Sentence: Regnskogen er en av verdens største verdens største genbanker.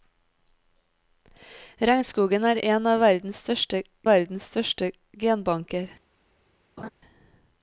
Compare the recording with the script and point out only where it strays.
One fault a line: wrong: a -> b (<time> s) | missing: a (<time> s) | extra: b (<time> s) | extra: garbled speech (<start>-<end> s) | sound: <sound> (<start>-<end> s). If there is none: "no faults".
sound: laugh (6.8-6.9 s)